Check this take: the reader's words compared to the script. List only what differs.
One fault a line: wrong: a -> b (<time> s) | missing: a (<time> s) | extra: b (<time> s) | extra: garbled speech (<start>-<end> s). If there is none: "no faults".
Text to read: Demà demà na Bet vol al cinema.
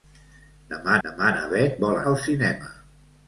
no faults